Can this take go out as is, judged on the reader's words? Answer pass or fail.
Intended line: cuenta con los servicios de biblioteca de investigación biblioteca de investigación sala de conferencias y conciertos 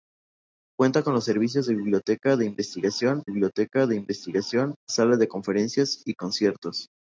pass